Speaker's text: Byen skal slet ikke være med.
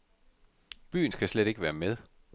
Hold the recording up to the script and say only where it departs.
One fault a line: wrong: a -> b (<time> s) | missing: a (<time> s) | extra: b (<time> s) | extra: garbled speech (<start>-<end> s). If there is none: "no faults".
no faults